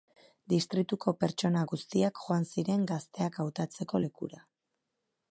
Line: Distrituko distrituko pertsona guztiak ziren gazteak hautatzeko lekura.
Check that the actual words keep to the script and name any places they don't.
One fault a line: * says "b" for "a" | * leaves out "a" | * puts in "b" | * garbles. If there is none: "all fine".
* leaves out "distrituko"
* puts in "joan"